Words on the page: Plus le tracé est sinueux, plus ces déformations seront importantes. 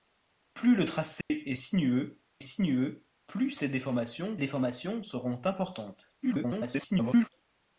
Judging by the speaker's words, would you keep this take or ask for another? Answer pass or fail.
fail